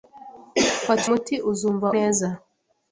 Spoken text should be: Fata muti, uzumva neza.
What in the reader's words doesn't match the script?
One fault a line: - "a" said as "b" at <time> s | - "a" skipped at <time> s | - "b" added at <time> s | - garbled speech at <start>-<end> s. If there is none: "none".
none